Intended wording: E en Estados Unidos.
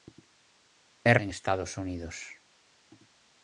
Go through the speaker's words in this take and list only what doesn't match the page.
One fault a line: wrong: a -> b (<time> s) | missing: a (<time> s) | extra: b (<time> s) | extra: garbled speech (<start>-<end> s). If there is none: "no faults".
no faults